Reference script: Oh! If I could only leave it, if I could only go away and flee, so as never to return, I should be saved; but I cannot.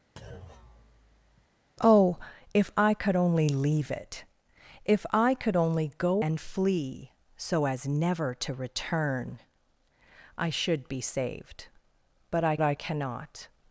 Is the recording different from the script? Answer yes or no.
yes